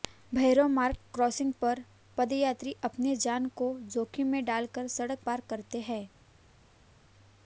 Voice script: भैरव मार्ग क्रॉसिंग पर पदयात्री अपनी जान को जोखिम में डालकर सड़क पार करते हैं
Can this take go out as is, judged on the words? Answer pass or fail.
pass